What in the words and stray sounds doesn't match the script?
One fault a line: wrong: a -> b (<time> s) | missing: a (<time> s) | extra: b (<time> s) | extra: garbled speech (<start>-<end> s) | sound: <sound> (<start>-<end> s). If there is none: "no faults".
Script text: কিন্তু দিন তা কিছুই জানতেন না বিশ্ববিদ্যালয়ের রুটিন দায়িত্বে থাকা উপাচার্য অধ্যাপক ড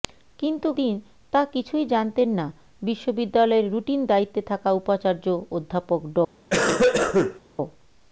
sound: cough (6.5-7.4 s)